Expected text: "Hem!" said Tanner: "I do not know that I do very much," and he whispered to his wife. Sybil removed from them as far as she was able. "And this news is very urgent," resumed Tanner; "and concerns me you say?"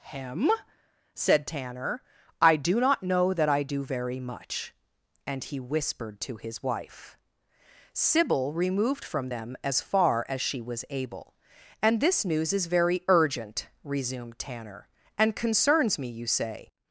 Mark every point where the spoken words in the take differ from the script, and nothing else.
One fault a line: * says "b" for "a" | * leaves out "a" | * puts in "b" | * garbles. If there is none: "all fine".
all fine